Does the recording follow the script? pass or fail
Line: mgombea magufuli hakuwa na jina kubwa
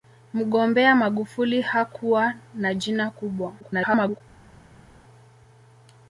fail